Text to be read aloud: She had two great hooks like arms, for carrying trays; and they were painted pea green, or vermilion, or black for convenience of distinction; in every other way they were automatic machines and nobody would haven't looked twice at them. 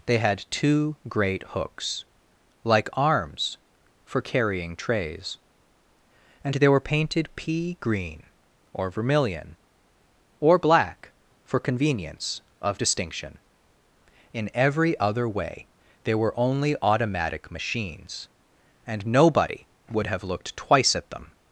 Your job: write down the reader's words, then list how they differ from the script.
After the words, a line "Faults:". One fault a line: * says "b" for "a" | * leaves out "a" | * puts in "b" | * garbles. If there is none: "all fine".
They had two great hooks like arms, for carrying trays; and they were painted pea green, or vermilion, or black for convenience of distinction; in every other way they were only automatic machines and nobody would have looked twice at them.
Faults:
* says "They" for "She"
* puts in "only"
* says "have" for "haven't"